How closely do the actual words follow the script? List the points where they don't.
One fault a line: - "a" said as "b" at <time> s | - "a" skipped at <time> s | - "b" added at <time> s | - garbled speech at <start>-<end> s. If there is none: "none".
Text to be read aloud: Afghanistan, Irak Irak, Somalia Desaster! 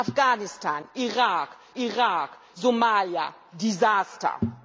none